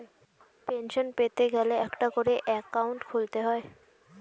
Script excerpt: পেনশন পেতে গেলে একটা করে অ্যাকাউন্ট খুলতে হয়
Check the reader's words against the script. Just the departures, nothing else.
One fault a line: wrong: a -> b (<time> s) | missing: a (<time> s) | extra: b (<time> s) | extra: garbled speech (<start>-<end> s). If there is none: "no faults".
no faults